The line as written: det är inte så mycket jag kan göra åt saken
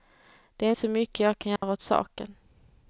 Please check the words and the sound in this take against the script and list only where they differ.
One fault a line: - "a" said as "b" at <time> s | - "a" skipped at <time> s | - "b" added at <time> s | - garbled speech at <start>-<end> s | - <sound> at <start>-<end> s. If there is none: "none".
- "inte" skipped at 0.7 s
- dropout at 1.6-1.6 s